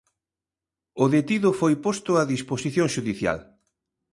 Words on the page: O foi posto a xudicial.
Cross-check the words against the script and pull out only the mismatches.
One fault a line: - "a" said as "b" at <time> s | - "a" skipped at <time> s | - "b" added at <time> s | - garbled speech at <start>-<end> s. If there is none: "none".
- "detido" added at 1.1 s
- "disposición" added at 2.3 s